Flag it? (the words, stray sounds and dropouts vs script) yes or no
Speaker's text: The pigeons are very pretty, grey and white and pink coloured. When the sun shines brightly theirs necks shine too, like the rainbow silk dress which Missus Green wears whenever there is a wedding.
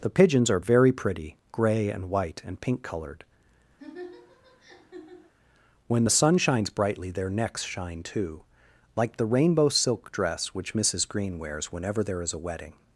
yes